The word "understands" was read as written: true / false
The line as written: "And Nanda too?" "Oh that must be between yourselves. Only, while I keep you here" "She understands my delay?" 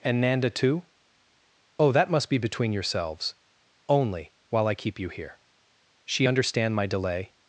false